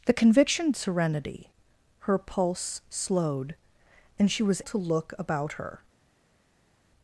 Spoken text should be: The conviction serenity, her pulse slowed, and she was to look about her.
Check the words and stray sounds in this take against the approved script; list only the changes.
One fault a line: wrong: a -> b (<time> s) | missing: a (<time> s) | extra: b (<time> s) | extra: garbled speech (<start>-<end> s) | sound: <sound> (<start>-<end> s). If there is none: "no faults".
no faults